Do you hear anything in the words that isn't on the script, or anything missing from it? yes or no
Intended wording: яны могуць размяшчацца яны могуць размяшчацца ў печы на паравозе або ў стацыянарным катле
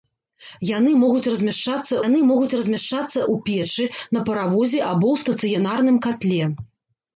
no